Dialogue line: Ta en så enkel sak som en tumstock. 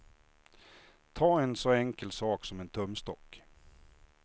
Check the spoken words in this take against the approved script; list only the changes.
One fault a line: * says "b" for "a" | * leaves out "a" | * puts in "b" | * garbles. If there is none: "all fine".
all fine